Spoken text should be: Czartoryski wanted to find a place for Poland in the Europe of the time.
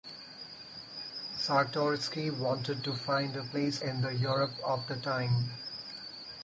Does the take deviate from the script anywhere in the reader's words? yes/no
yes